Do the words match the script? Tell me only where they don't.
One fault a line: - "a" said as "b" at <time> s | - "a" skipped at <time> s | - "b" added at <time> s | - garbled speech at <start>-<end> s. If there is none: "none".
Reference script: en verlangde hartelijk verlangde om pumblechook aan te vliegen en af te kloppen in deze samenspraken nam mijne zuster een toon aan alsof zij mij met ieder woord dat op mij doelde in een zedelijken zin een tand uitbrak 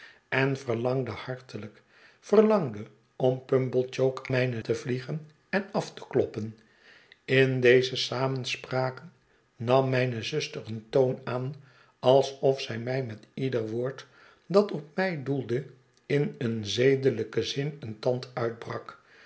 - "aan" said as "mijne" at 4.3 s